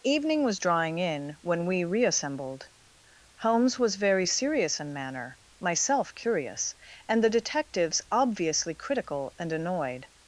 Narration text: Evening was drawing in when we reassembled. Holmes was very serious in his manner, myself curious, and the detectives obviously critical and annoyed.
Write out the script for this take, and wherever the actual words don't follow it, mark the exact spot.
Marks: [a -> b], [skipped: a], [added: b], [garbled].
Evening was drawing in when we reassembled. Holmes was very serious in [skipped: his] manner, myself curious, and the detectives obviously critical and annoyed.